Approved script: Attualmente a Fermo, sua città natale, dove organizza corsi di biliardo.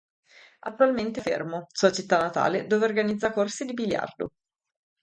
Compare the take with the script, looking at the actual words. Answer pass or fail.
pass